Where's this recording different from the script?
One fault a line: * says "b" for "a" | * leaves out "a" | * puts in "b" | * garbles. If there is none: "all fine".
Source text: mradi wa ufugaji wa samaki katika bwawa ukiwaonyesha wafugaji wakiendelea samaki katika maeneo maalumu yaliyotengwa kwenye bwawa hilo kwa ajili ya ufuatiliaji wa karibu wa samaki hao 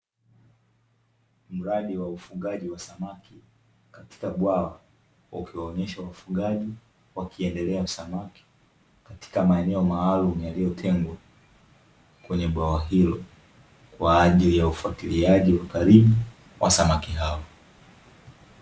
all fine